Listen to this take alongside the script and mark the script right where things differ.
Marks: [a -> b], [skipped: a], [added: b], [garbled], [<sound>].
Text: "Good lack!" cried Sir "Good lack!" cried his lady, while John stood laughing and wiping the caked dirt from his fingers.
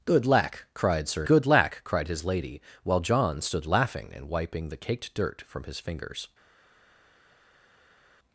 "Good lack!" cried Sir "Good lack!" cried his lady, while John stood laughing and wiping the caked dirt from his fingers.